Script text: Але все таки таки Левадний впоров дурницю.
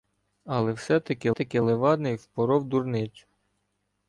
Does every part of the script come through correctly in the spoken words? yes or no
yes